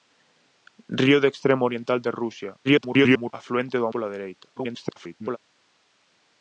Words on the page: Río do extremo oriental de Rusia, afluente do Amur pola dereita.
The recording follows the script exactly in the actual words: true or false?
false